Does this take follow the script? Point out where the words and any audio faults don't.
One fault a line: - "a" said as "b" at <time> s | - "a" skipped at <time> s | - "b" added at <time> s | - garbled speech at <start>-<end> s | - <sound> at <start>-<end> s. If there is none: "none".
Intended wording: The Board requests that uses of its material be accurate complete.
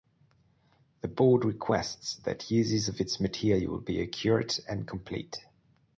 - "and" added at 4.7 s